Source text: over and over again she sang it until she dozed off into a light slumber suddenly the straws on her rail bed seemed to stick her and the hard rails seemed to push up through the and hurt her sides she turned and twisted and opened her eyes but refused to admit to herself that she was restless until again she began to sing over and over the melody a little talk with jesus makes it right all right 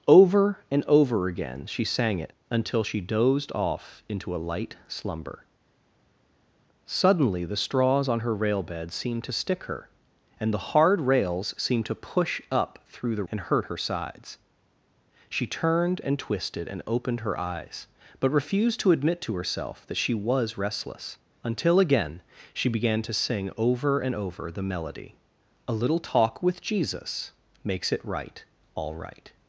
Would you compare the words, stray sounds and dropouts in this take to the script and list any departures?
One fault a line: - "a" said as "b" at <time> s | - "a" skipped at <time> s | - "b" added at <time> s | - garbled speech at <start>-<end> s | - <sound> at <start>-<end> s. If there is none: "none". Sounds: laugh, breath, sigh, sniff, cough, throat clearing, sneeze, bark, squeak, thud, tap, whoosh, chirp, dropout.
none